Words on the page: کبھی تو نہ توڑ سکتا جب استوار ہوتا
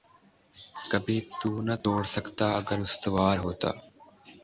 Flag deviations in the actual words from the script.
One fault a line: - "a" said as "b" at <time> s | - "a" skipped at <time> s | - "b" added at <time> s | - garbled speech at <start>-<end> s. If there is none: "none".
- "جب" said as "اگر" at 2.6 s